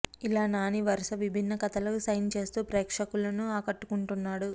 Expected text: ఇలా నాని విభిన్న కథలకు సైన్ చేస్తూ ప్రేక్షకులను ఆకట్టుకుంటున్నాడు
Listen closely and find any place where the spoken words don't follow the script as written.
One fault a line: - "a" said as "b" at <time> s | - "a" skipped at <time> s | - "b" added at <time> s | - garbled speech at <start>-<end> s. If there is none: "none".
- "వరుస" added at 0.8 s